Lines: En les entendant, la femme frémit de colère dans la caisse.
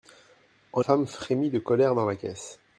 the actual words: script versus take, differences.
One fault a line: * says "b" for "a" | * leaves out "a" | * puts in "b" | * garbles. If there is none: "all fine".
* leaves out "les entendant la"